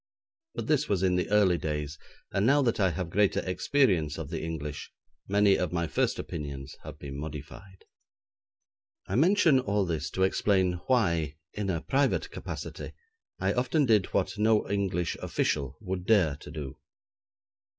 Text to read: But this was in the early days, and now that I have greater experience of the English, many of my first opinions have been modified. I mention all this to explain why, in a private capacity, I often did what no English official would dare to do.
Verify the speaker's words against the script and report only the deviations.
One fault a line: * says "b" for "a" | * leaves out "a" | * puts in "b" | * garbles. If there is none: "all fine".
all fine